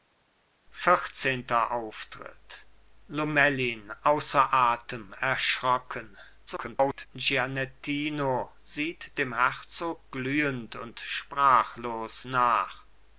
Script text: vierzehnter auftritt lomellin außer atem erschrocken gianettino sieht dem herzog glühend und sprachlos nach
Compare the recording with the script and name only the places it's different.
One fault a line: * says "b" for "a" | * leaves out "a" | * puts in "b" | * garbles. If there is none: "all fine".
* garbles